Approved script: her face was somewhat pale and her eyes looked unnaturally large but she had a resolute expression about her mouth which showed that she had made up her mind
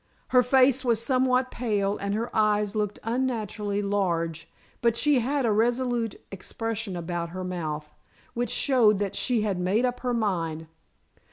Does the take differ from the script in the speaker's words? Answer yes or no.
no